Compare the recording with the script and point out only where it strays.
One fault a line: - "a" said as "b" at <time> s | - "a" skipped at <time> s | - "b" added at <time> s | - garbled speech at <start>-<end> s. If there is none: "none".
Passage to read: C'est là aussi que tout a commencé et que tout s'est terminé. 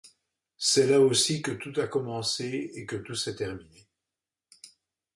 none